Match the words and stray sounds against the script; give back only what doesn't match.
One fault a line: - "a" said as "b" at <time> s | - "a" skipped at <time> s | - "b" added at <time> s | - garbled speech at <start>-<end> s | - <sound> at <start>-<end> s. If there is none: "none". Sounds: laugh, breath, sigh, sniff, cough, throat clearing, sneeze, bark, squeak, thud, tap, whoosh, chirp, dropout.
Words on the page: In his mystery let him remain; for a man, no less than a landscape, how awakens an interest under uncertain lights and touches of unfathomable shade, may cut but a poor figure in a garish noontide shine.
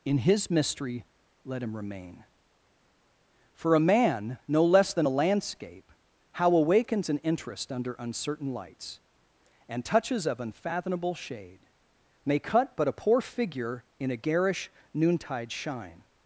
none